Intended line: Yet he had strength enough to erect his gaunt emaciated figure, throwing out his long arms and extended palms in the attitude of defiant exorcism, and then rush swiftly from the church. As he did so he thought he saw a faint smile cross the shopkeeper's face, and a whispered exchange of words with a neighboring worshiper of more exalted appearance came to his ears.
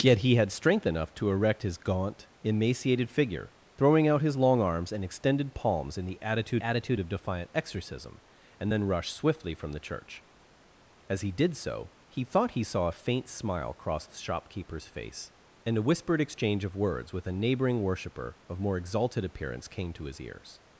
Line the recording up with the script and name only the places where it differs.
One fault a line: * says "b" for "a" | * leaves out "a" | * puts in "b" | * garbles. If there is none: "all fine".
* puts in "attitude"